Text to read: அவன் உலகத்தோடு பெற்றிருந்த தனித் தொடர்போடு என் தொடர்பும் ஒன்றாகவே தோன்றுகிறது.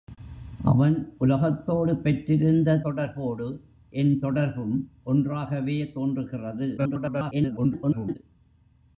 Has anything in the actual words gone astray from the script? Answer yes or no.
yes